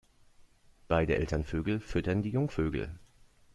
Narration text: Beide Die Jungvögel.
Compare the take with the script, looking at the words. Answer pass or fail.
fail